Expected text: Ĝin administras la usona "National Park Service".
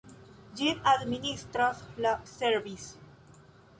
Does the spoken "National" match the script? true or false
false